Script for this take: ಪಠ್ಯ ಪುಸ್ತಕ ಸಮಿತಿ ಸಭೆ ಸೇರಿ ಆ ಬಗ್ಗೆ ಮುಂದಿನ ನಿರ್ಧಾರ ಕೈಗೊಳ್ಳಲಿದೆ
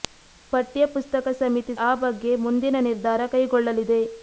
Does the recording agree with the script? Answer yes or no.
no